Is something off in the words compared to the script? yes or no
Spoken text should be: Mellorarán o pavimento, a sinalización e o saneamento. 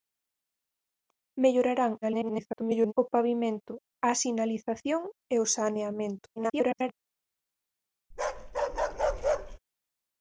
yes